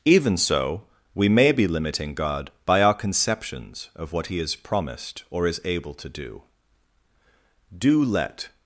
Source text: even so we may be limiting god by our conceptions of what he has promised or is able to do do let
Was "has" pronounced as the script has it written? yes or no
yes